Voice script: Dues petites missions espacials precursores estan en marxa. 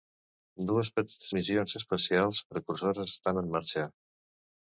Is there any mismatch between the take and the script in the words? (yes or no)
no